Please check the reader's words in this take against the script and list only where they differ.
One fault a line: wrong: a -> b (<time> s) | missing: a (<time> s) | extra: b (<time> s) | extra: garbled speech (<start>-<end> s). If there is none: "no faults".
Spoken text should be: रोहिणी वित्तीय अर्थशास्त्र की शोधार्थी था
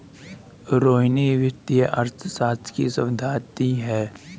wrong: था -> है (3.8 s)